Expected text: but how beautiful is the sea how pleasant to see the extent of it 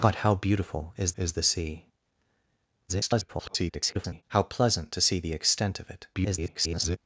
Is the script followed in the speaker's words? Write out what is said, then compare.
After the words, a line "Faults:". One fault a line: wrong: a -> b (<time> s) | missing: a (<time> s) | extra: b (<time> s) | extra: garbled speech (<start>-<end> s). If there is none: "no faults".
but how beautiful is is the sea [garbled] how pleasant to see the extent of it [garbled]
Faults:
extra: is (1.2 s)
extra: garbled speech (2.9-4.2 s)
extra: garbled speech (6.1-7.0 s)